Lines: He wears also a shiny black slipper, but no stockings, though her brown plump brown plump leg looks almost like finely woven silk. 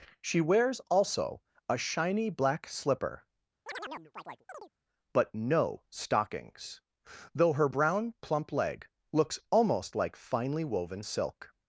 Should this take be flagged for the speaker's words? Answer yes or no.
yes